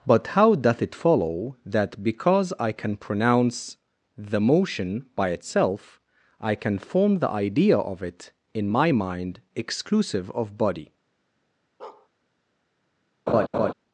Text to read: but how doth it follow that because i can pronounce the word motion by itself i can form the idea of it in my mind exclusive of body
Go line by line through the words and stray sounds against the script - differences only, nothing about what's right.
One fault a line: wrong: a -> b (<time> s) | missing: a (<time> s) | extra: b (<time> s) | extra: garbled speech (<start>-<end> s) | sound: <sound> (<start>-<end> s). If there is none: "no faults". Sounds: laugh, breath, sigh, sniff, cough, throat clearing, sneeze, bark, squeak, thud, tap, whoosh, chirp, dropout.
missing: word (4.4 s)
sound: bark (11.8-12.1 s)
sound: laugh (13.3-13.7 s)